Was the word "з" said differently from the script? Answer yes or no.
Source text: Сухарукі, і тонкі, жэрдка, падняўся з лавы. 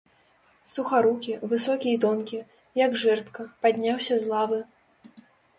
no